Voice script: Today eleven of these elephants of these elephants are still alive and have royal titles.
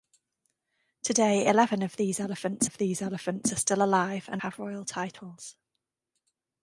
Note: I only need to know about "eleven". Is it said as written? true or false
true